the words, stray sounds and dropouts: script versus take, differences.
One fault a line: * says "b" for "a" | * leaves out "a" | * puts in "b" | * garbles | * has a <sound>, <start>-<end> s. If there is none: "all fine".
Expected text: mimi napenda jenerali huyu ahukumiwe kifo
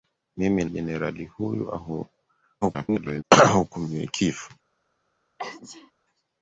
* leaves out "napenda"
* garbles
* has a sneeze, 5.4-5.9 s